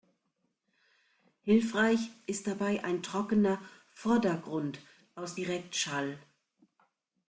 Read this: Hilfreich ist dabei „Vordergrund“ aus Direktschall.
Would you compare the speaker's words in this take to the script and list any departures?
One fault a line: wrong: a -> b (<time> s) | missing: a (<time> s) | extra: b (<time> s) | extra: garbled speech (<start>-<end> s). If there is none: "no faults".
extra: ein trockener (2.8 s)